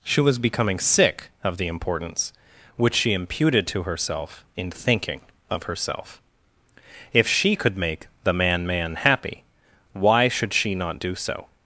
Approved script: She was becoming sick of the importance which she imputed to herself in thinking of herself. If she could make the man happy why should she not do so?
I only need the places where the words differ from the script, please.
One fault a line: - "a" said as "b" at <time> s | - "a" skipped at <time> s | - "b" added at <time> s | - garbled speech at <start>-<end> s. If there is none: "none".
- "man" added at 8.7 s